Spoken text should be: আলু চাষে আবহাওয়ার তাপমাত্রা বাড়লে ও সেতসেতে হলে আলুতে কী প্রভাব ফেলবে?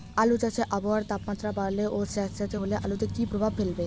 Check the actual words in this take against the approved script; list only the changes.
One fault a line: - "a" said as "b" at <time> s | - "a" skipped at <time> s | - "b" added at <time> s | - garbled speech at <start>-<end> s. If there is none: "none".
none